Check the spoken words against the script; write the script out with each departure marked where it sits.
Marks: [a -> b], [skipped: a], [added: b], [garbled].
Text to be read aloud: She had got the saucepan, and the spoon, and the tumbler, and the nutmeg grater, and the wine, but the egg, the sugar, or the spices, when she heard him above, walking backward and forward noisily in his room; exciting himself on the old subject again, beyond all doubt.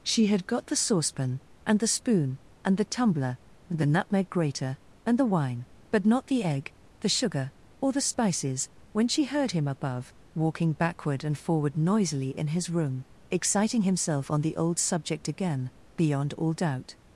She had got the saucepan, and the spoon, and the tumbler, and the nutmeg grater, and the wine, but [added: not] the egg, the sugar, or the spices, when she heard him above, walking backward and forward noisily in his room; exciting himself on the old subject again, beyond all doubt.